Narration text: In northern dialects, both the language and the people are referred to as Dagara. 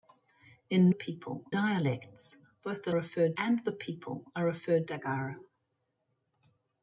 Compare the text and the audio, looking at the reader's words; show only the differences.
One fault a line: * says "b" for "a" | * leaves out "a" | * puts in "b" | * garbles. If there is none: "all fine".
* says "people" for "northern"
* says "referred" for "language"
* leaves out "to as"